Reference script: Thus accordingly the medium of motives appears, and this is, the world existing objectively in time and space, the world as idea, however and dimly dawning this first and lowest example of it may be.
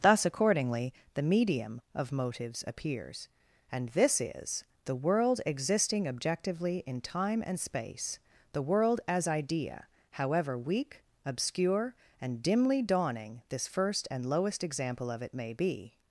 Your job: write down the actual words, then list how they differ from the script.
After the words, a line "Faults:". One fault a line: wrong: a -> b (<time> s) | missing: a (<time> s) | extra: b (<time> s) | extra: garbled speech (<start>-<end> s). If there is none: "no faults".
Thus accordingly the medium of motives appears, and this is, the world existing objectively in time and space, the world as idea, however weak, obscure, and dimly dawning this first and lowest example of it may be.
Faults:
extra: weak obscure (10.6 s)